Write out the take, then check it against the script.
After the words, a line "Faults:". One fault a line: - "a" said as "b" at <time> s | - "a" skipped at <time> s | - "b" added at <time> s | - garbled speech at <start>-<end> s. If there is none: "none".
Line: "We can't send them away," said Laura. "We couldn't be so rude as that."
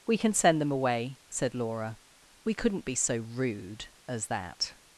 "We can send them away," said Laura. "We couldn't be so rude as that."
Faults:
- "can't" said as "can" at 0.2 s